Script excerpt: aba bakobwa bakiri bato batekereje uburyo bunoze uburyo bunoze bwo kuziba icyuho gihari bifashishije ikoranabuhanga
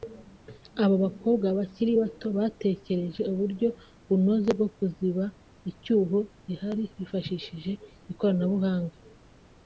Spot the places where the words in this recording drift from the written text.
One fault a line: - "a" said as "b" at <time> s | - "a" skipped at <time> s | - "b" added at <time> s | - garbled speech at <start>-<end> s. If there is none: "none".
- "uburyo bunoze" skipped at 4.5 s